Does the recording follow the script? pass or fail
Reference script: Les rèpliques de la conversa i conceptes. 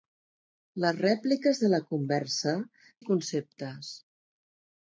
pass